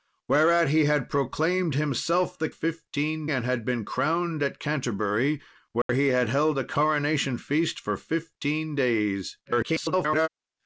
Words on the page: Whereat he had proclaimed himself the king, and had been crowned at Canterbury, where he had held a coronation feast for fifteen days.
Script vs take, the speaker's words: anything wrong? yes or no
yes